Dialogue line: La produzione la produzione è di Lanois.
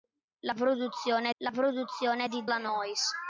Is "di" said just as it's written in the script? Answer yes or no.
yes